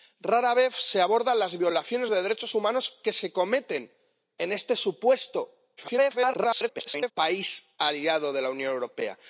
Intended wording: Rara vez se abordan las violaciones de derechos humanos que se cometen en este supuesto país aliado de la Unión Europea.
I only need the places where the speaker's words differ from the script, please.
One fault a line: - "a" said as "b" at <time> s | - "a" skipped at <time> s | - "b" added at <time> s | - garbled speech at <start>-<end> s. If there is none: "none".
- garbled speech at 5.8-7.1 s